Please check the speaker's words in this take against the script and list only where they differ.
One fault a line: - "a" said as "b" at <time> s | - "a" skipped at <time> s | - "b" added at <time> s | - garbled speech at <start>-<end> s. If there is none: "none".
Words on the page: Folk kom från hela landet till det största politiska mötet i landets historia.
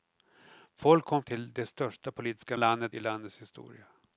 - "från hela landet" skipped at 1.2 s
- "mötet" said as "landet" at 2.5 s